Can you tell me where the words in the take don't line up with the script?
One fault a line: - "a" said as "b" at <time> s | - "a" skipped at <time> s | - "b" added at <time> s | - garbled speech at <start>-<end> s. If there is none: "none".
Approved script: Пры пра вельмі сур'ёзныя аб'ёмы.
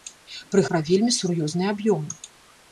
none